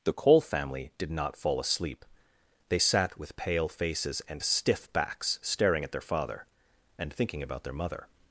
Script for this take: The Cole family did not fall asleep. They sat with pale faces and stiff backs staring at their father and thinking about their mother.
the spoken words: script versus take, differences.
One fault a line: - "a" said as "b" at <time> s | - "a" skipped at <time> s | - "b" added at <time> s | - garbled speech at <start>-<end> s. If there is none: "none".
none